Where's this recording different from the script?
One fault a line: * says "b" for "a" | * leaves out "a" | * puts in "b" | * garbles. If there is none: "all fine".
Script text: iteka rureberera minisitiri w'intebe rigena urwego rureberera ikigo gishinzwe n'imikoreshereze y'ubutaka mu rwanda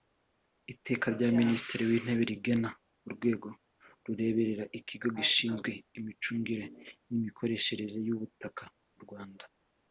* says "rya" for "rureberera"
* puts in "imicungire"